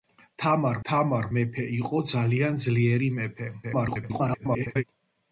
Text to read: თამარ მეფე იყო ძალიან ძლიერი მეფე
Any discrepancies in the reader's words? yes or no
yes